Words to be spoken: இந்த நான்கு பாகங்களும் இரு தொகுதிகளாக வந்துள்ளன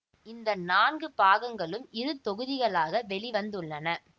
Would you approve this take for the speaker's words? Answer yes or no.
no